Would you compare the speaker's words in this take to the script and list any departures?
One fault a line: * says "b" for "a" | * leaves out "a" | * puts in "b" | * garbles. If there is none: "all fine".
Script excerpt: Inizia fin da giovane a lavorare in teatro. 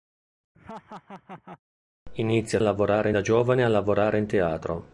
* says "lavorare" for "fin"